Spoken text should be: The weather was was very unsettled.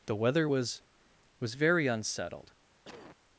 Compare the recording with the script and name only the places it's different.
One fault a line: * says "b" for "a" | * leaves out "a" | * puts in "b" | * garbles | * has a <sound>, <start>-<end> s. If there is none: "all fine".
* has a cough, 2.8-3.2 s